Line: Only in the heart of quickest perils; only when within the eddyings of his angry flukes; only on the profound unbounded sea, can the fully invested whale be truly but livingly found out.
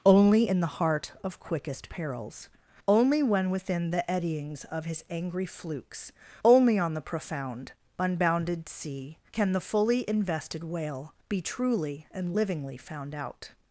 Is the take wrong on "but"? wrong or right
wrong